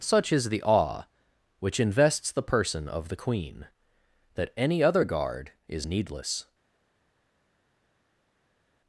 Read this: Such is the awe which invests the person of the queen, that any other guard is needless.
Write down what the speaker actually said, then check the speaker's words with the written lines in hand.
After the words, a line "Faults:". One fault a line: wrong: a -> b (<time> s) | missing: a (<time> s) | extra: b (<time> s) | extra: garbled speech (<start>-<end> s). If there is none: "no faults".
Such is the awe which invests the person of the queen, that any other guard is needless.
Faults:
no faults